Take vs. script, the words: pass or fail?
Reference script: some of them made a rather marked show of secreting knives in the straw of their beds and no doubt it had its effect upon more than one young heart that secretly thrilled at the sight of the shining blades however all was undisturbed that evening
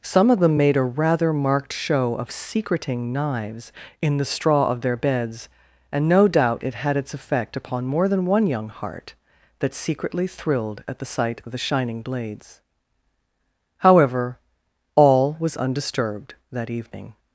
pass